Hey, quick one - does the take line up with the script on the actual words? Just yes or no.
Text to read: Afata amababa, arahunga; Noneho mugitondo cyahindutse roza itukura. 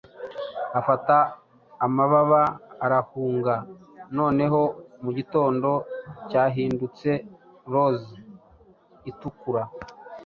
yes